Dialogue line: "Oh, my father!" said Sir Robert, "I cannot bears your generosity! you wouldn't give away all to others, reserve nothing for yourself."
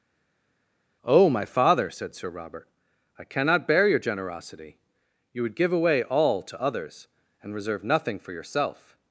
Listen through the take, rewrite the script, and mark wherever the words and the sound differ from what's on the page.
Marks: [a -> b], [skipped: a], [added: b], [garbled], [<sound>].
"Oh, my father!" said Sir Robert, "I cannot [bears -> bear] your generosity! you [wouldn't -> would] give away all to others, [added: and] reserve nothing for yourself."